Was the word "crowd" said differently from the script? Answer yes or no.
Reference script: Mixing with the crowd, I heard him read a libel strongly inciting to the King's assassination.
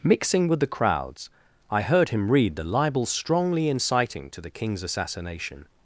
yes